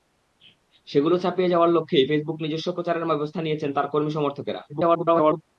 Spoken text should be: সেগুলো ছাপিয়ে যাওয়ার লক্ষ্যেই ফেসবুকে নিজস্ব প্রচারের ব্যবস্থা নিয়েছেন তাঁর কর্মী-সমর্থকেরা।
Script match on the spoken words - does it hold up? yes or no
no